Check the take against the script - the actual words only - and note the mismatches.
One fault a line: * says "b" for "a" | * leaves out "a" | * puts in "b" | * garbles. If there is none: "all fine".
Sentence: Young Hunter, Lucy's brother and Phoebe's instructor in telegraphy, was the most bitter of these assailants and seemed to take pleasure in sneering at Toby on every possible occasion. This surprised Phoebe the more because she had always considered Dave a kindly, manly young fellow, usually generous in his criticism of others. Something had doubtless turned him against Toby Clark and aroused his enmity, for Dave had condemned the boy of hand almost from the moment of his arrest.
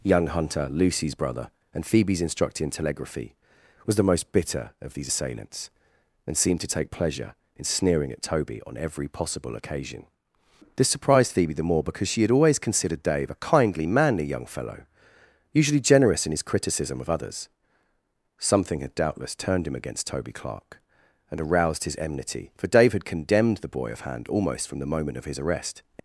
all fine